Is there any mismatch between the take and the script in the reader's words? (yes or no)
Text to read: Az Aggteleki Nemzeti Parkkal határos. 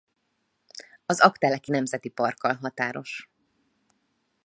no